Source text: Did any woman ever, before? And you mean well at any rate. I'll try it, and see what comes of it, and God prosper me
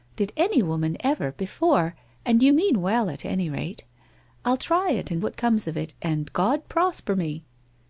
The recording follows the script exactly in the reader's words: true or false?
false